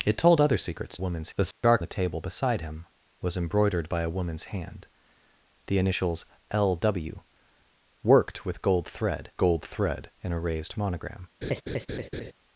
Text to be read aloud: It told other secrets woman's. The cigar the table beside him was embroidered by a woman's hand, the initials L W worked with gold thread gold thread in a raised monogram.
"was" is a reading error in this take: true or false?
false